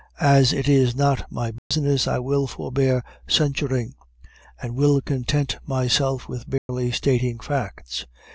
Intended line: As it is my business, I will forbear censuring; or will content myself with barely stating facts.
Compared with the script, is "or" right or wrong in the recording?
wrong